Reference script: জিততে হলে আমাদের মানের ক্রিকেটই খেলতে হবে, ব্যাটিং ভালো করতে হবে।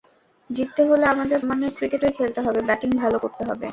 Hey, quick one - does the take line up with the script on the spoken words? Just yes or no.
yes